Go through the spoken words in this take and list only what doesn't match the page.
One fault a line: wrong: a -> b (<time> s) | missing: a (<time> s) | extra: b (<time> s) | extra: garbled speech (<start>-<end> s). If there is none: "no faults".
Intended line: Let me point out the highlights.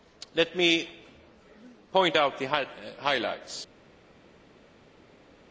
no faults